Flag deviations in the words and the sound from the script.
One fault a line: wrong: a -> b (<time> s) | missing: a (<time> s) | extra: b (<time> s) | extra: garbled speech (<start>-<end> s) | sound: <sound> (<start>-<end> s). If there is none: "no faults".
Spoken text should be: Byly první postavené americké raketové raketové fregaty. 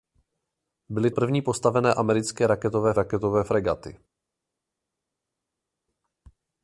no faults